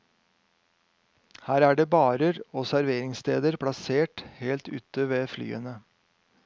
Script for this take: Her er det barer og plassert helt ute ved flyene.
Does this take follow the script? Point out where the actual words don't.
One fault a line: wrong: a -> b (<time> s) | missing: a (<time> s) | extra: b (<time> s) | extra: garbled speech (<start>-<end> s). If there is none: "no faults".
extra: serveringssteder (2.7 s)